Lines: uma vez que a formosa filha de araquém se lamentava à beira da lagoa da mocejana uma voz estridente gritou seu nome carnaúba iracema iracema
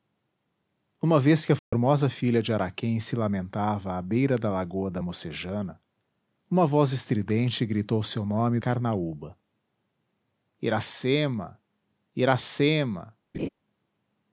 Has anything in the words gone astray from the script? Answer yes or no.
no